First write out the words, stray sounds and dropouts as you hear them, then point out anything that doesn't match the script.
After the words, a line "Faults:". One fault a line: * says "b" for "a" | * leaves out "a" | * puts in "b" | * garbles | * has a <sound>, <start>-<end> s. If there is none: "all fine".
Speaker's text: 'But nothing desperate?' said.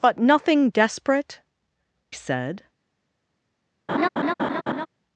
'But nothing desperate?' said.
Faults:
* has a laugh, 3.9-4.9 s